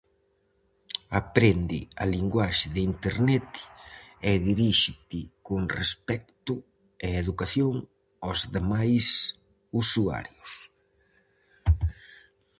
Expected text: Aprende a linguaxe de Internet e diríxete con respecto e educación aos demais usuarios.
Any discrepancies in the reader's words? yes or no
no